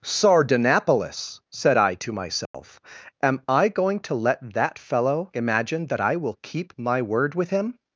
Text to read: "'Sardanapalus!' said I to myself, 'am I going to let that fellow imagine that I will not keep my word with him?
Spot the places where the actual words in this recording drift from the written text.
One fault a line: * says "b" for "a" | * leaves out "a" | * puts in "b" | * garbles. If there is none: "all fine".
* leaves out "not"